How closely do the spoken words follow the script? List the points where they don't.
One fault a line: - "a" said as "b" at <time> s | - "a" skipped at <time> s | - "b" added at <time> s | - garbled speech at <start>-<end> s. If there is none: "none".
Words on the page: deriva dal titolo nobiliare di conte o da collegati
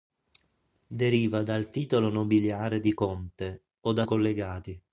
none